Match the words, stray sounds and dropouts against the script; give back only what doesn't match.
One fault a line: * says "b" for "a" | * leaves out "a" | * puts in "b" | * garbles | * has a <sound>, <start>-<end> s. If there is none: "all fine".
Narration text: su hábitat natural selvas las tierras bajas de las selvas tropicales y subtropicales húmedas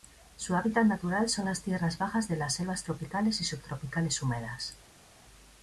* says "son" for "selvas"